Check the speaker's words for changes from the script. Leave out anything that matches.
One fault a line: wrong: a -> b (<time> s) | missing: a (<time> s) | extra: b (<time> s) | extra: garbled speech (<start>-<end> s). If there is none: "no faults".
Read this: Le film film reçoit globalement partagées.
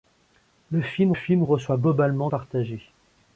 no faults